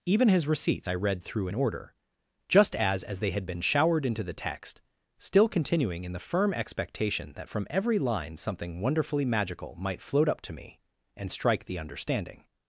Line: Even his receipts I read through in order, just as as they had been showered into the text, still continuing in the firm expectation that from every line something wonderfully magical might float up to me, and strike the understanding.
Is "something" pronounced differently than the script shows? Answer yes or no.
no